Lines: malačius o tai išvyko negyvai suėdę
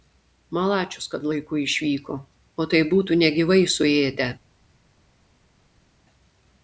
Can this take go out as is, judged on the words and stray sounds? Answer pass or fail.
fail